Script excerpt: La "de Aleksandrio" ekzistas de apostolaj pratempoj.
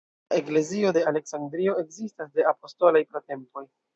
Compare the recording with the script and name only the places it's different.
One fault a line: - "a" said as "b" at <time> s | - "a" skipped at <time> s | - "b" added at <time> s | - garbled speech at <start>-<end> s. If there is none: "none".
- "eklezio" added at 0.4 s